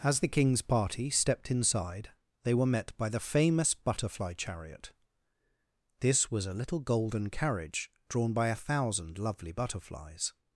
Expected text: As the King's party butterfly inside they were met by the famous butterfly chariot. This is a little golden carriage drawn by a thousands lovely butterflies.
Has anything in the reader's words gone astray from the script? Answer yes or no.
yes